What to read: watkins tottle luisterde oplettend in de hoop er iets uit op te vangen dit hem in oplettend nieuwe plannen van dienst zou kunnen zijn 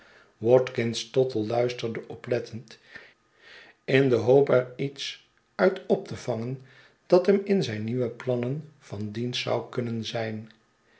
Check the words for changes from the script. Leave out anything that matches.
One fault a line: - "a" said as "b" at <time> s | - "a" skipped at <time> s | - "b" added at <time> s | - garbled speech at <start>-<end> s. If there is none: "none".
- "dit" said as "dat" at 7.0 s
- "oplettend" said as "zijn" at 7.6 s